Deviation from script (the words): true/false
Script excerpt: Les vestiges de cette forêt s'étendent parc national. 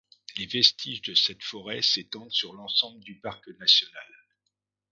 true